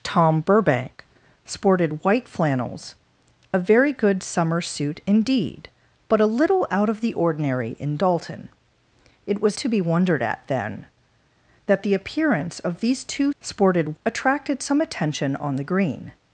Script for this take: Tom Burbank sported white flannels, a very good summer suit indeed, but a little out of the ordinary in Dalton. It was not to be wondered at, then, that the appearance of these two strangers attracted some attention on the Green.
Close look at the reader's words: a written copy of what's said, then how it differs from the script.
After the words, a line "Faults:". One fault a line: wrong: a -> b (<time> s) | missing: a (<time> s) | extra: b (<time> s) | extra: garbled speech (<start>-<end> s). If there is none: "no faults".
Tom Burbank sported white flannels, a very good summer suit indeed, but a little out of the ordinary in Dalton. It was to be wondered at, then, that the appearance of these two sported attracted some attention on the Green.
Faults:
missing: not (9.6 s)
wrong: strangers -> sported (13.4 s)